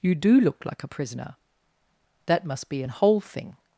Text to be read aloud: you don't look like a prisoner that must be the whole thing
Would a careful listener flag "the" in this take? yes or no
yes